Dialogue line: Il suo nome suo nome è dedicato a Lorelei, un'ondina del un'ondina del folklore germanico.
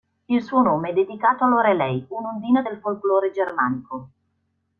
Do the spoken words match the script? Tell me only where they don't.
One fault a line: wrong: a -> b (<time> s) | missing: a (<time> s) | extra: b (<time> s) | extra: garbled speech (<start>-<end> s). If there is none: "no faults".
missing: suo nome (0.9 s)
missing: un'ondina del (2.8 s)